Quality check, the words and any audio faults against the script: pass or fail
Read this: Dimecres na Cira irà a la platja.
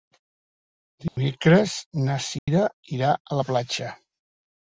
fail